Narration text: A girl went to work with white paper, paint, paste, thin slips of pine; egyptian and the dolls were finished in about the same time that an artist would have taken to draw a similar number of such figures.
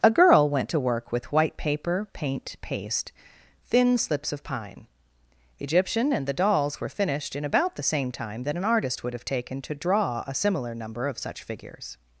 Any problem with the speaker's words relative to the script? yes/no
no